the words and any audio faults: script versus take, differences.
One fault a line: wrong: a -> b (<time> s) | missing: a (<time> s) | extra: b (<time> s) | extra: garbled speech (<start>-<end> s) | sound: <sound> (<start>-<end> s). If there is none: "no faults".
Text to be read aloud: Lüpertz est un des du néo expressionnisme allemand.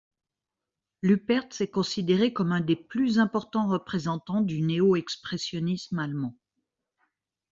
extra: considéré comme (1.7 s)
extra: plus importants représentants (2.8 s)